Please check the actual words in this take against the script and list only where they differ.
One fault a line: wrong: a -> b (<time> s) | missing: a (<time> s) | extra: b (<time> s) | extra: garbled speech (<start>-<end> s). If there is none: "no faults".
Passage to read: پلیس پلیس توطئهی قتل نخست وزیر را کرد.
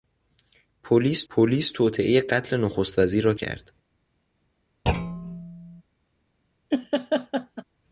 no faults